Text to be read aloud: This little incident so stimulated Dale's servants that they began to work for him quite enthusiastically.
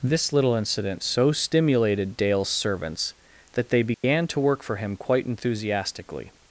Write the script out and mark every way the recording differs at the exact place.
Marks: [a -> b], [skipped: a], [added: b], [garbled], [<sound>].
This little incident so stimulated Dale's servants that they began [dropout] to work for him quite enthusiastically.